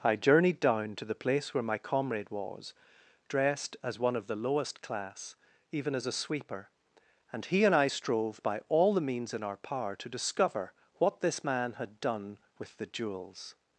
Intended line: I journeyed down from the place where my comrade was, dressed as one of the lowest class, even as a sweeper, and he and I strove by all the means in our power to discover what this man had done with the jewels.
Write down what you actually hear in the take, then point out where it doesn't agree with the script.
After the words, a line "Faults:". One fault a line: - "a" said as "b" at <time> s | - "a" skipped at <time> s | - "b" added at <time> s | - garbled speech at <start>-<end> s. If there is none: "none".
I journeyed down to the place where my comrade was, dressed as one of the lowest class, even as a sweeper, and he and I strove by all the means in our power to discover what this man had done with the jewels.
Faults:
- "from" said as "to" at 0.9 s